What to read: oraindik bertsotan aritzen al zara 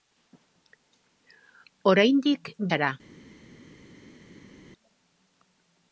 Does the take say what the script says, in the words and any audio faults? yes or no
no